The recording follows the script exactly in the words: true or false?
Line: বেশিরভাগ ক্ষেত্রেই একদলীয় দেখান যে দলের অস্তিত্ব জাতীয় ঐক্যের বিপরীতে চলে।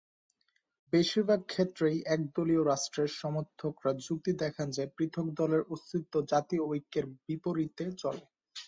false